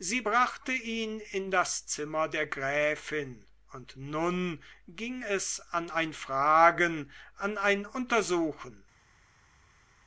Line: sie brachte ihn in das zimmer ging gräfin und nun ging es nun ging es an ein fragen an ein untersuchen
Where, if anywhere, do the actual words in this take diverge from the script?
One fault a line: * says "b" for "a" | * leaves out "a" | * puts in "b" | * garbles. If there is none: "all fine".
* says "der" for "ging"
* leaves out "nun ging es"